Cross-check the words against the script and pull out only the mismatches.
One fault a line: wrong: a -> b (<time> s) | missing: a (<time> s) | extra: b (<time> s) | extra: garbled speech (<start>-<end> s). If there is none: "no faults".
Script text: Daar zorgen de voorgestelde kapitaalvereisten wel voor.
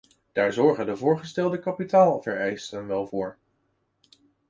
no faults